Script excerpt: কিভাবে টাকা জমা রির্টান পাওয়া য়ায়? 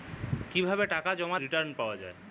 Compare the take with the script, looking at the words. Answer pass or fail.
pass